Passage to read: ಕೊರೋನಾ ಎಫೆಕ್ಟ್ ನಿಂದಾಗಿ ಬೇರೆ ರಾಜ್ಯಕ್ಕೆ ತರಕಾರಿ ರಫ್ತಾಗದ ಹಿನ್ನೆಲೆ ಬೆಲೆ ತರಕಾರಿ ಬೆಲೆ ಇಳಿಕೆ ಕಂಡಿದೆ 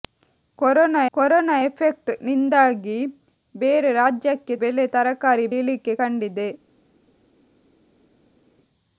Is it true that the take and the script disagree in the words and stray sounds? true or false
true